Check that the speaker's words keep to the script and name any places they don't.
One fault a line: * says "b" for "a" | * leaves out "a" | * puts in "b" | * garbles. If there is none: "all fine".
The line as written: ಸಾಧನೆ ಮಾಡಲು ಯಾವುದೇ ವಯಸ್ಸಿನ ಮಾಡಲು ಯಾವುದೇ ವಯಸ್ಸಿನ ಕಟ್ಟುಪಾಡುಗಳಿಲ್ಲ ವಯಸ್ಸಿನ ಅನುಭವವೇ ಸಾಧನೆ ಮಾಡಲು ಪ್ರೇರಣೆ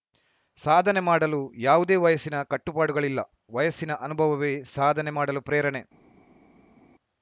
* leaves out "ಮಾಡಲು ಯಾವುದೇ ವಯಸ್ಸಿನ"